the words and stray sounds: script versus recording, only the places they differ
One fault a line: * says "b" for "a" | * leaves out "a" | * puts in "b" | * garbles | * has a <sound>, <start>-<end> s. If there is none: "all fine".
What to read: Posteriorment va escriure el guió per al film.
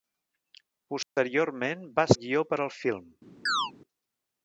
* has a dropout, 1.0-1.2 s
* leaves out "escriure"
* has a chirp, 3.5-3.7 s